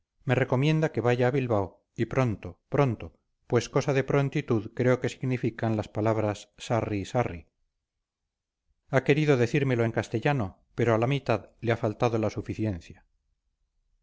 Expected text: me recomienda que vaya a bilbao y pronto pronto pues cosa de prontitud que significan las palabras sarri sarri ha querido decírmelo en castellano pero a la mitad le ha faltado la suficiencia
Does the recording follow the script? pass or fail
fail